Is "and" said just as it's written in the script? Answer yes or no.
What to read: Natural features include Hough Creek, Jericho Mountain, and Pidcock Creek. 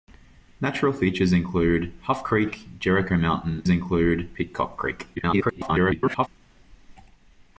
no